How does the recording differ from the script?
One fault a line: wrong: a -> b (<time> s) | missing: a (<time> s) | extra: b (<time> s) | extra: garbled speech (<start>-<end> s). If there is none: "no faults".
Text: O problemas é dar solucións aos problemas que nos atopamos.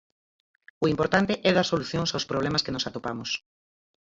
wrong: problemas -> importante (0.9 s)